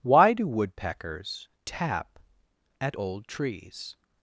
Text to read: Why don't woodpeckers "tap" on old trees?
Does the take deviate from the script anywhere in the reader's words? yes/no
yes